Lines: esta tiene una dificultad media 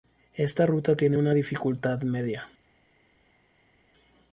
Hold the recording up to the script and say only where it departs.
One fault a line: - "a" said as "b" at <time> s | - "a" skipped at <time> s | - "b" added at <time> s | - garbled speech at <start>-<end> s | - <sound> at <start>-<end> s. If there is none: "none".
- "ruta" added at 0.7 s